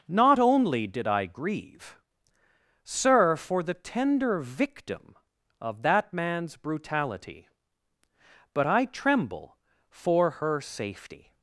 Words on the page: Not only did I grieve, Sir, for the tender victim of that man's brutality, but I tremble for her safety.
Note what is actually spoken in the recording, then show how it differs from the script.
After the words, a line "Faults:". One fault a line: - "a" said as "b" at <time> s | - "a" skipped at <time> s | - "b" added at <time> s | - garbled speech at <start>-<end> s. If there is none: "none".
Not only did I grieve, Sir, for the tender victim of that man's brutality, but I tremble for her safety.
Faults:
none